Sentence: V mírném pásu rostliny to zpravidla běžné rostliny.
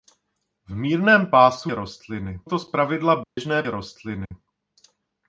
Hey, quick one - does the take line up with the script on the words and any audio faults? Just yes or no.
no